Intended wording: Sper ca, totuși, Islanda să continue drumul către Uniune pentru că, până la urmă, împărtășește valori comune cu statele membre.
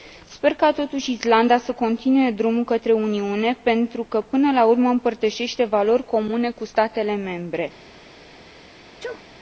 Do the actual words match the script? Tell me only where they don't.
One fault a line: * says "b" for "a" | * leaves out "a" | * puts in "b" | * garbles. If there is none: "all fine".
all fine